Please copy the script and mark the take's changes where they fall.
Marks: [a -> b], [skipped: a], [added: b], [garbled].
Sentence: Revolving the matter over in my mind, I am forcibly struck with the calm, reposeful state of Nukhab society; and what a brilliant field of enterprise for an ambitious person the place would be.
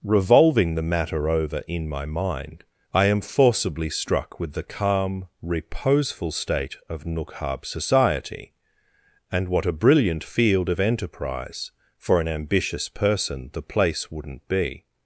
Revolving the matter over in my mind, I am forcibly struck with the calm, reposeful state of Nukhab society; and what a brilliant field of enterprise for an ambitious person the place [would -> wouldn't] be.